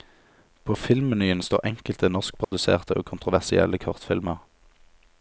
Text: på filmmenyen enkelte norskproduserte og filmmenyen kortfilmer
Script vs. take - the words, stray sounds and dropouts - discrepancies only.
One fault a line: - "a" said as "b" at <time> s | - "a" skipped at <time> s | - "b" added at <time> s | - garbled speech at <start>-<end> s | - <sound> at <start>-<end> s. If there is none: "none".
- "står" added at 1.4 s
- dropout at 2.4-2.5 s
- "filmmenyen" said as "kontroversielle" at 3.0 s